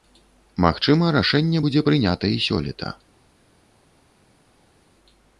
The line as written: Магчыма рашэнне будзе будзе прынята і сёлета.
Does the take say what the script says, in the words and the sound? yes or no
no